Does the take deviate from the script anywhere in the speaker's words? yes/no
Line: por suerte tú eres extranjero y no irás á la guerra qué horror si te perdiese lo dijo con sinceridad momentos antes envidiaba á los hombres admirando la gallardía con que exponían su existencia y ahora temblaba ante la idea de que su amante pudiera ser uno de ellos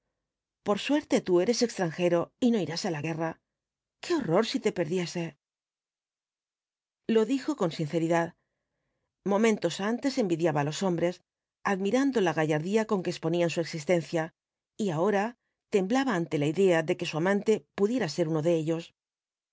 no